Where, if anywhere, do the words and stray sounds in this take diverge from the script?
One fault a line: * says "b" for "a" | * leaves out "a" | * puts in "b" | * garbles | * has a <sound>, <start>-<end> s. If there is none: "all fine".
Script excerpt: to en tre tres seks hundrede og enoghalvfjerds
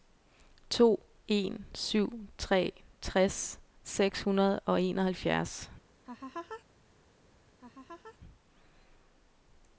* puts in "syv"
* has a laugh, 6.0-6.6 s
* has a laugh, 7.6-8.2 s